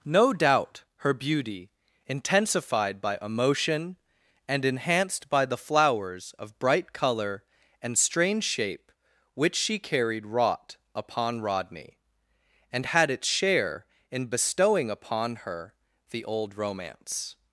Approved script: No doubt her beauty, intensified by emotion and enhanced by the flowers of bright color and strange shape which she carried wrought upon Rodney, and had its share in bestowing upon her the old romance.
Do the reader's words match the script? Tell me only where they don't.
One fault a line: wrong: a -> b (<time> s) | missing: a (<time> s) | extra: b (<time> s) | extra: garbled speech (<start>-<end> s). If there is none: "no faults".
no faults